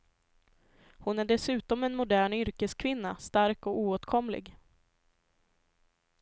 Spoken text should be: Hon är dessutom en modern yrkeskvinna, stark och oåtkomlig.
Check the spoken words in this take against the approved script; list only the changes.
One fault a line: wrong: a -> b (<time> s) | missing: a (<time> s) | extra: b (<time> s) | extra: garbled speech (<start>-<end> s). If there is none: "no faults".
no faults